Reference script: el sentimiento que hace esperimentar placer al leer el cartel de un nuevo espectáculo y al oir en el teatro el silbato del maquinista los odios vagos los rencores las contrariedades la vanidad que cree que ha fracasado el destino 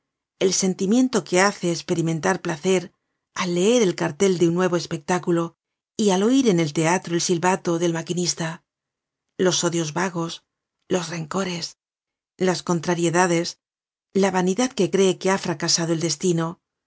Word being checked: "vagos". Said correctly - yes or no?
yes